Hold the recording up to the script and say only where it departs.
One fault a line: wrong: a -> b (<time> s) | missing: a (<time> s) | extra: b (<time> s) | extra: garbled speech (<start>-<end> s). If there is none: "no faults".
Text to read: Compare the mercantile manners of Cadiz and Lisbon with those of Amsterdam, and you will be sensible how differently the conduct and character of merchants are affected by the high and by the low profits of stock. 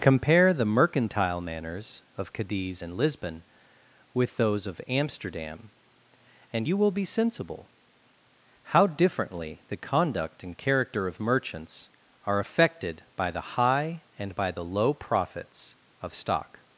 no faults